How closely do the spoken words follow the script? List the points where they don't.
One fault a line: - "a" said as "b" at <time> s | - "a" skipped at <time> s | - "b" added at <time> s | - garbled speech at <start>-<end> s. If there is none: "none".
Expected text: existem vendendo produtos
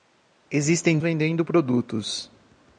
none